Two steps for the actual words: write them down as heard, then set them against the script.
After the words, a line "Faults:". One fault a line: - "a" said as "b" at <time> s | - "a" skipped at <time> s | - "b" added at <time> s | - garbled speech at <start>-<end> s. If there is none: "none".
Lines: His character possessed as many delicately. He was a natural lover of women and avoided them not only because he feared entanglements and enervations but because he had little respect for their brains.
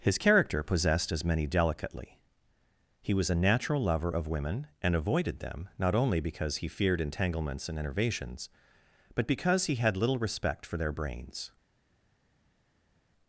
His character possessed as many delicately. He was a natural lover of women and avoided them not only because he feared entanglements and enervations but because he had little respect for their brains.
Faults:
none